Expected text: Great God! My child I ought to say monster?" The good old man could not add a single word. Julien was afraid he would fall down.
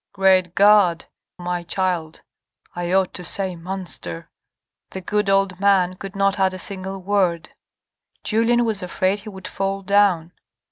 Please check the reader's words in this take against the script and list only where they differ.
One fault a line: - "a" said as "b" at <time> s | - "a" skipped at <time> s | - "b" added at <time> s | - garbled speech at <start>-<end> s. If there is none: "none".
none